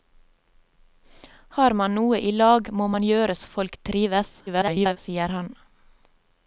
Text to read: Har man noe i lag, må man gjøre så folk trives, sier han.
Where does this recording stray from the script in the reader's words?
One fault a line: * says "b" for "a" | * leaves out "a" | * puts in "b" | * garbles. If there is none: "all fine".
* garbles